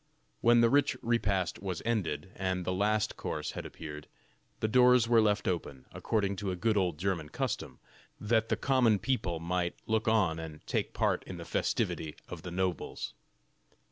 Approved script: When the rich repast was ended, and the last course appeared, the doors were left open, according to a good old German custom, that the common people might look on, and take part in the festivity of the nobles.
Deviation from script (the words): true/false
true